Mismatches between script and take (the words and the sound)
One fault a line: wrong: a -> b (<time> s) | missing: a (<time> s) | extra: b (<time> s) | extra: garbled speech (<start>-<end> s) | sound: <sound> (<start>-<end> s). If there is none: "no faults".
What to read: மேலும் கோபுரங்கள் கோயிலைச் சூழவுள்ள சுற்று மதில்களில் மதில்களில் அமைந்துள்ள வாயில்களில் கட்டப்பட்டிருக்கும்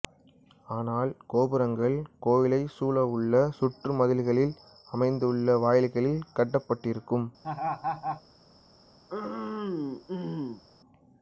wrong: மேலும் -> ஆனால் (0.7 s)
missing: மதில்களில் (4.6 s)
sound: laugh (7.4-8.2 s)
sound: throat clearing (9.1-10.6 s)